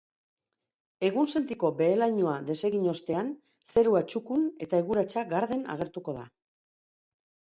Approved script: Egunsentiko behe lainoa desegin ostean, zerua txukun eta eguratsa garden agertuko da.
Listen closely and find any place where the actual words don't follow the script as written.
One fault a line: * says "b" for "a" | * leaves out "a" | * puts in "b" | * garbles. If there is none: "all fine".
all fine